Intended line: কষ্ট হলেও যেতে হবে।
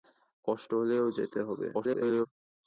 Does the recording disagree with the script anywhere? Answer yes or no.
yes